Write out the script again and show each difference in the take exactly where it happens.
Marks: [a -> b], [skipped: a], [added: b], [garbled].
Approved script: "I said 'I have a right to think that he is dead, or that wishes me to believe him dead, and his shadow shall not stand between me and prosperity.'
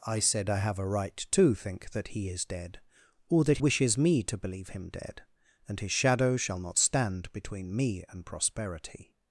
"I said 'I have a right to think that he is dead, or that wishes me to believe him dead, and his shadow shall not stand between me and prosperity.'